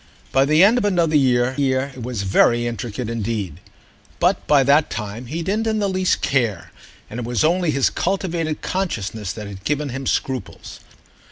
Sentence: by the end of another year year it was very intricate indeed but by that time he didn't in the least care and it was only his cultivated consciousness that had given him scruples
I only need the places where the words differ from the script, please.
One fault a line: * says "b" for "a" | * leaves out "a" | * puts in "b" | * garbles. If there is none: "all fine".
all fine